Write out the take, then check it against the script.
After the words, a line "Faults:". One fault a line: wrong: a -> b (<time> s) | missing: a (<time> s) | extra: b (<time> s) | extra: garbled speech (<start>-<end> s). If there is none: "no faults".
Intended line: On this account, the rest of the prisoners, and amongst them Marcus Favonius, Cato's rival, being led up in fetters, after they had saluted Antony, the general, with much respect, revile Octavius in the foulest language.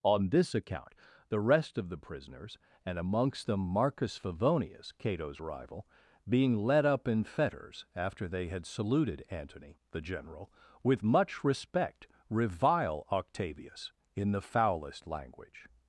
On this account, the rest of the prisoners, and amongst them Marcus Favonius, Cato's rival, being led up in fetters, after they had saluted Antony, the general, with much respect, revile Octavius in the foulest language.
Faults:
no faults